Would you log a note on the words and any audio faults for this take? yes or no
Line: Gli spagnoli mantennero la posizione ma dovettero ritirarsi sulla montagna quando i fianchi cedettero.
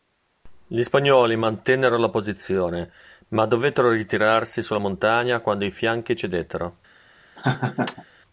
yes